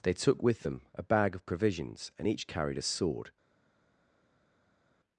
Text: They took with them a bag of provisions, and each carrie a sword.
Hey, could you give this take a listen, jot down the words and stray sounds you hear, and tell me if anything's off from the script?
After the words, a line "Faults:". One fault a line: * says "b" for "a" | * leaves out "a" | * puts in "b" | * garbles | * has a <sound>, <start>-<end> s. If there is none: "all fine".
They took with them a bag of provisions, and each carried a sword.
Faults:
* says "carried" for "carrie"